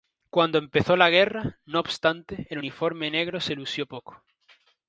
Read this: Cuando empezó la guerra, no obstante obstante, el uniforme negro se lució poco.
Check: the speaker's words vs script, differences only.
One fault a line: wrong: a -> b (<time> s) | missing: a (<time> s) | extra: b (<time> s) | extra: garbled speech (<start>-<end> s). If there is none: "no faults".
missing: obstante (2.5 s)